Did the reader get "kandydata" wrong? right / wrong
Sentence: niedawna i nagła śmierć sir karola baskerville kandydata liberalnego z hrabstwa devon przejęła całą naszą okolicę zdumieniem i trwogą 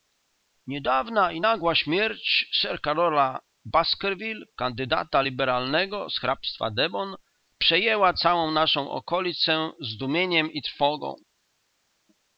right